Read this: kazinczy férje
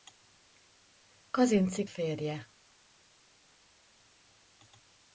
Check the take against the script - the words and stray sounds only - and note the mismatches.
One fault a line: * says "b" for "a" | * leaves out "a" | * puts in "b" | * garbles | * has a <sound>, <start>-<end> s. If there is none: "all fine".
all fine